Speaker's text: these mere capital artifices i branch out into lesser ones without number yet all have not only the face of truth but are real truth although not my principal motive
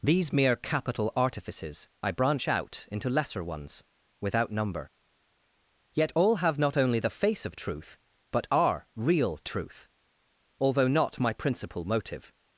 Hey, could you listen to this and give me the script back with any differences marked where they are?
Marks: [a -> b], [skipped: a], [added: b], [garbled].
these mere capital artifices i branch out into lesser ones without number yet all have not only the face of truth but are real truth although not my principal motive